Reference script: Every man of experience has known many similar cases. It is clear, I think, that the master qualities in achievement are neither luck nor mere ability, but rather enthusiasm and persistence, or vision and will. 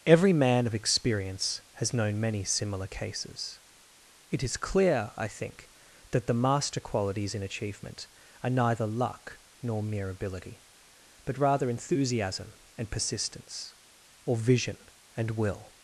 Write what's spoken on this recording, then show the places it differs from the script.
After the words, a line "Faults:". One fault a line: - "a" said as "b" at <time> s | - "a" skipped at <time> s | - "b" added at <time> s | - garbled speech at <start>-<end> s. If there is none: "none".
Every man of experience has known many similar cases. It is clear, I think, that the master qualities in achievement are neither luck nor mere ability, but rather enthusiasm and persistence, or vision and will.
Faults:
none